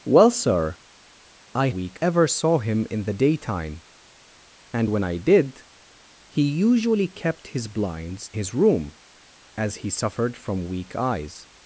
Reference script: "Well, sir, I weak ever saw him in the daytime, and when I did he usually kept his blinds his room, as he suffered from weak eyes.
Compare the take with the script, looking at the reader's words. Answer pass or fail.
pass